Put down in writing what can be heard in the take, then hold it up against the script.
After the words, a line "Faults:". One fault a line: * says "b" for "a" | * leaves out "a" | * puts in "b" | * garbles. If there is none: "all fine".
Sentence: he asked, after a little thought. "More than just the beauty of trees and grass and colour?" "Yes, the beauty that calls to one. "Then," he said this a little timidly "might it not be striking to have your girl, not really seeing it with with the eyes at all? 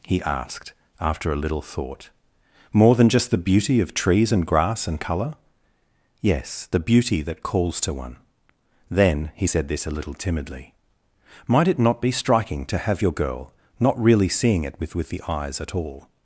he asked, after a little thought. "More than just the beauty of trees and grass and colour?" "Yes, the beauty that calls to one. "Then," he said this a little timidly "might it not be striking to have your girl, not really seeing it with with the eyes at all?
Faults:
all fine